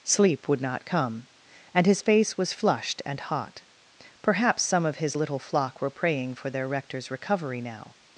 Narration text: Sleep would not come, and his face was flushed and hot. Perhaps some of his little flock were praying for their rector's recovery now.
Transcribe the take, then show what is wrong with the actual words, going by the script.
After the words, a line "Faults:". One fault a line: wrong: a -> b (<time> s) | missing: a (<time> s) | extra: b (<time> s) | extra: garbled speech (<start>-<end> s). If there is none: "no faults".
Sleep would not come, and his face was flushed and hot. Perhaps some of his little flock were praying for their rector's recovery now.
Faults:
no faults